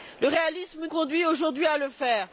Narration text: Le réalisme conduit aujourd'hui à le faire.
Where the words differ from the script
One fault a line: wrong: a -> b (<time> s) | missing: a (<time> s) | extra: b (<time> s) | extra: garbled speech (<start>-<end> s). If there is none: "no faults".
no faults